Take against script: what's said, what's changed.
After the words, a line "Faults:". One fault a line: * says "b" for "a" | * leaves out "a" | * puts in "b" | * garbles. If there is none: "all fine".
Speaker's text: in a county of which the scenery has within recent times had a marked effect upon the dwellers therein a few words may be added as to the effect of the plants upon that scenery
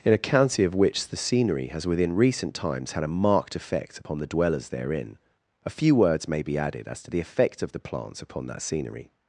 in a county of which the scenery has within recent times had a marked effect upon the dwellers therein a few words may be added as to the effect of the plants upon that scenery
Faults:
all fine